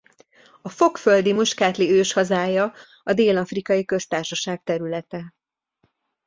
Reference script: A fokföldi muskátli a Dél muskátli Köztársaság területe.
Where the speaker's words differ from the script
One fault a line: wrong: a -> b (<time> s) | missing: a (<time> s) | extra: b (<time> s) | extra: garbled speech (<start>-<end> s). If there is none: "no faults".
extra: őshazája (1.9 s)
wrong: muskátli -> afrikai (3.4 s)